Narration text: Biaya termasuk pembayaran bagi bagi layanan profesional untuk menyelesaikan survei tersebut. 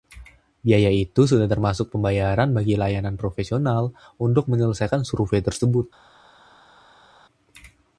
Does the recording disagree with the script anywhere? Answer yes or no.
yes